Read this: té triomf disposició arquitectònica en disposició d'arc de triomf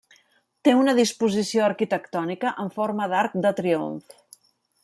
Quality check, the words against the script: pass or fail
fail